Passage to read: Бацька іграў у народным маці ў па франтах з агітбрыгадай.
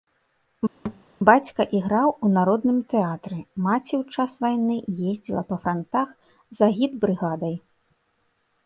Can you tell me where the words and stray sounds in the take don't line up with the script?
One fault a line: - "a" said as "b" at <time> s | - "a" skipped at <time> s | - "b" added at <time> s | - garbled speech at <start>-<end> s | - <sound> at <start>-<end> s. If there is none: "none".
- thud at 0.8-1.0 s
- "тэатры" added at 2.9 s
- "час вайны ездзіла" added at 4.2 s